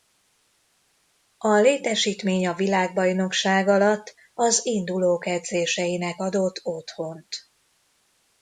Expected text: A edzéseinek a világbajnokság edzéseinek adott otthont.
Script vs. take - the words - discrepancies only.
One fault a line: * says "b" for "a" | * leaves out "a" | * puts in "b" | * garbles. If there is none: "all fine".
* says "létesítmény" for "edzéseinek"
* puts in "alatt az indulók"